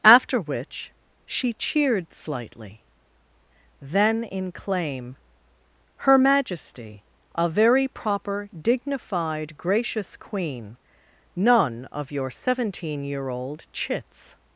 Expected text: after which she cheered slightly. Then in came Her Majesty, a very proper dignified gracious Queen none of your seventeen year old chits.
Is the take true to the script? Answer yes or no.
no